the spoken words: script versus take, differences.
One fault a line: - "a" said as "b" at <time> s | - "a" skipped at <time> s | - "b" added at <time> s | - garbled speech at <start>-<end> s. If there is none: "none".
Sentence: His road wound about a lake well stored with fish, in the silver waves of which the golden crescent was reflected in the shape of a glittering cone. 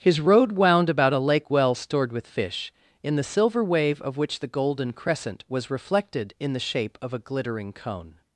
- "waves" said as "wave" at 3.6 s